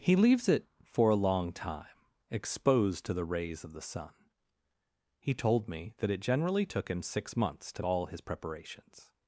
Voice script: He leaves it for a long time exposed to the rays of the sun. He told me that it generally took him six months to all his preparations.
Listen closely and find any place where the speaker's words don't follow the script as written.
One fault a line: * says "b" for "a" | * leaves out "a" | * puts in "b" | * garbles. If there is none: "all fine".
all fine